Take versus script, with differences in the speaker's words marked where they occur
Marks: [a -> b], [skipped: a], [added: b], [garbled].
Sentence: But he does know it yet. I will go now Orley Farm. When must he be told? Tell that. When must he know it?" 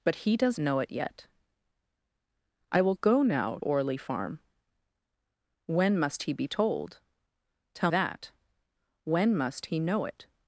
But he does know it yet. I will go now Orley Farm. When must he be told? Tell that. When must he know it?"